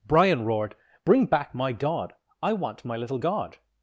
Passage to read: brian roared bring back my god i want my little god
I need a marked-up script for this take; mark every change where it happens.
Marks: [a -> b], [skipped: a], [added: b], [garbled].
brian roared bring back my god i want my little god